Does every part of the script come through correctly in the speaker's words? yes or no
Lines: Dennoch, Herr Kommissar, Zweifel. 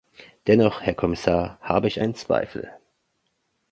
no